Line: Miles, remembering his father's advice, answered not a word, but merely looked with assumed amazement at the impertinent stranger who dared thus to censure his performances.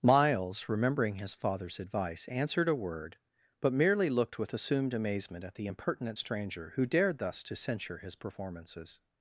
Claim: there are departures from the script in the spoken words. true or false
true